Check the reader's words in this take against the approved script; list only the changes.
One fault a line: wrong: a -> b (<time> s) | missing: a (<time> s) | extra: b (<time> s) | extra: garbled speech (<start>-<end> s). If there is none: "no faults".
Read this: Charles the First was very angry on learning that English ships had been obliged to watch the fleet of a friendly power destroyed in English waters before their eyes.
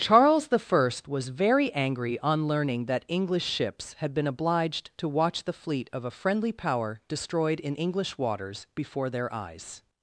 no faults